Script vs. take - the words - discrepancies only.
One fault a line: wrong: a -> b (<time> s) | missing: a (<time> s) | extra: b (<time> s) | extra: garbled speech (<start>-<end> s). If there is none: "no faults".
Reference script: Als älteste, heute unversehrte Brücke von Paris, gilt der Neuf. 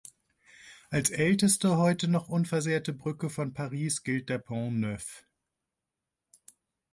extra: noch (2.1 s)
extra: Pont (4.4 s)